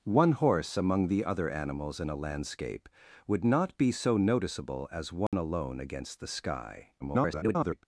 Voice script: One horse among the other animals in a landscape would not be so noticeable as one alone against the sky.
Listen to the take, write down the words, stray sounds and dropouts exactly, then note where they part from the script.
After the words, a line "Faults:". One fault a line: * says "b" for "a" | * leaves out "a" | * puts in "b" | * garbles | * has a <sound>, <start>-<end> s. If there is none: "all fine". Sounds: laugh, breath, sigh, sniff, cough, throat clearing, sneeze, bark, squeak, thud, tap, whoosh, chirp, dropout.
One horse among the other animals in a landscape would not be so noticeable as one alone against the sky. [garbled]
Faults:
* has a dropout, 5.3-5.3 s
* garbles